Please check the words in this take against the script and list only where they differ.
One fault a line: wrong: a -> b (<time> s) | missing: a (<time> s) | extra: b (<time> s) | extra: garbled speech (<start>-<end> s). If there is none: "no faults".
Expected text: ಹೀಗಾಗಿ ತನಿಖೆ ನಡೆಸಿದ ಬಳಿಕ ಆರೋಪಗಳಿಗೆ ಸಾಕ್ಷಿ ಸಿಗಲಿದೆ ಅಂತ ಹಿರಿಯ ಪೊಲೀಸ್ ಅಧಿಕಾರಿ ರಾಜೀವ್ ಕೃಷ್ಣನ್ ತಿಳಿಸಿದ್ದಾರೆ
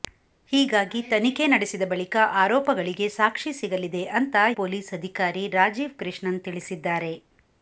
missing: ಹಿರಿಯ (4.3 s)